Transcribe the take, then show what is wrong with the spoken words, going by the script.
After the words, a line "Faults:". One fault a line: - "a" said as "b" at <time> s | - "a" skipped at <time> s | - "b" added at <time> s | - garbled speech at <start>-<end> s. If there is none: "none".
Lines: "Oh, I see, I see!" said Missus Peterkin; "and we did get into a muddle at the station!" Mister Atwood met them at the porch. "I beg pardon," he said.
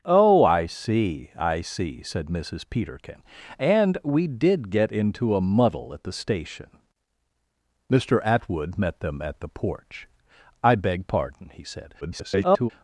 "Oh, I see, I see!" said Missus Peterkin; "and we did get into a muddle at the station!" Mister Atwood met them at the porch. "I beg pardon," he said. [garbled]
Faults:
- garbled speech at 12.0-12.7 s